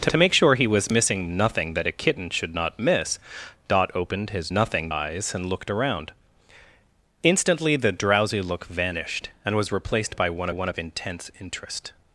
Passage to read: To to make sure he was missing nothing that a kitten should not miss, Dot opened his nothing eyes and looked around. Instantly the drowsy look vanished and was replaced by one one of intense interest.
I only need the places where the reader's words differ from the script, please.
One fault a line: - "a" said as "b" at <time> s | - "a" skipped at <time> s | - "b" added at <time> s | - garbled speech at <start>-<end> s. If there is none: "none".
none